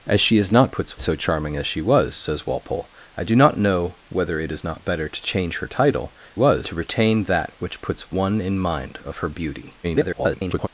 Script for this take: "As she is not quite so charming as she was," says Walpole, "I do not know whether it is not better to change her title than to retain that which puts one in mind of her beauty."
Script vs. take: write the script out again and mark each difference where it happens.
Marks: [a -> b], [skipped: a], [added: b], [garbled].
"As she is not [quite -> puts] so charming as she was," says Walpole, "I do not know whether it is not better to change her title [than -> was] to retain that which puts one in mind of her beauty." [garbled]